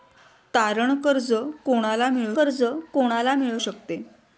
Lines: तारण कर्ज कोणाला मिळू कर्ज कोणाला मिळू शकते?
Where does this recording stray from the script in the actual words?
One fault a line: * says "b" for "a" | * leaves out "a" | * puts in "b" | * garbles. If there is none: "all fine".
all fine